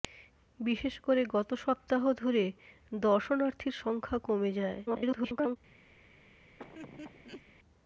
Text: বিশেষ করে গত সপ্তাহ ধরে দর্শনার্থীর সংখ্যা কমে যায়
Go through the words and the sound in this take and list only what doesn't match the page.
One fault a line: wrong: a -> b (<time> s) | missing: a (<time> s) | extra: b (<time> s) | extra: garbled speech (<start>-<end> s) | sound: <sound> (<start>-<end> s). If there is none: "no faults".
extra: garbled speech (4.9-5.6 s)
sound: laugh (6.6-7.4 s)